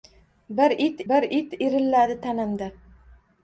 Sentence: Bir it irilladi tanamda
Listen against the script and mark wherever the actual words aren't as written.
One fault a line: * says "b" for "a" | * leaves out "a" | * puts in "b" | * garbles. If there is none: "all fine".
* puts in "bir it"